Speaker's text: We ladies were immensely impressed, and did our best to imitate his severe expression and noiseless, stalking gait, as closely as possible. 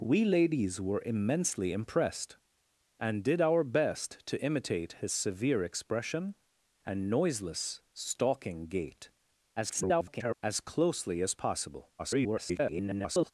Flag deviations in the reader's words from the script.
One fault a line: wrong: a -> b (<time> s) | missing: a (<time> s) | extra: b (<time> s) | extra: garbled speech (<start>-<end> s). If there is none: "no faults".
extra: garbled speech (9.6-10.3 s)
extra: garbled speech (12.0-13.3 s)